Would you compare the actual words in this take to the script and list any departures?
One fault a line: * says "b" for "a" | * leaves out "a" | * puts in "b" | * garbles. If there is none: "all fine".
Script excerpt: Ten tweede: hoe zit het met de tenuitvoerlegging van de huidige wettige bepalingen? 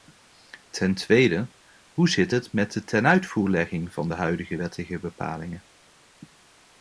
all fine